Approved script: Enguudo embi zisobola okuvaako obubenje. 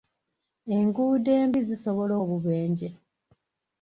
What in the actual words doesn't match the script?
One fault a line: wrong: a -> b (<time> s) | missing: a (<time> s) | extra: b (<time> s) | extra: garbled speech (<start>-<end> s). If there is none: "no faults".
missing: okuvaako (2.1 s)